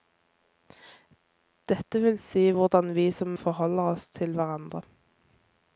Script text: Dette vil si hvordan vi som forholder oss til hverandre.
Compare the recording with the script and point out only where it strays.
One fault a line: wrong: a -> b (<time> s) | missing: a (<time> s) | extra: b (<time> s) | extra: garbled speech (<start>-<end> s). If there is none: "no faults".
no faults